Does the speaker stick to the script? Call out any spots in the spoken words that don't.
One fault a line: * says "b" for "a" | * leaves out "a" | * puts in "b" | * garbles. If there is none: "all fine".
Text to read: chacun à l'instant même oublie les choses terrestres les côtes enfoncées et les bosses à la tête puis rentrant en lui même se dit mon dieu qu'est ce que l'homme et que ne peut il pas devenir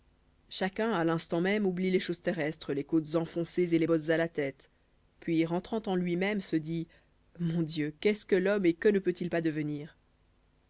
all fine